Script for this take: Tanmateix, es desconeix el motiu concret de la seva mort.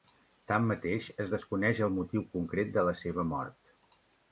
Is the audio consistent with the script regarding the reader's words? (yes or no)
yes